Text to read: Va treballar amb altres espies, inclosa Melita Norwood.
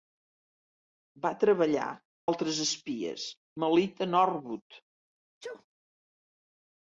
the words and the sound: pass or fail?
fail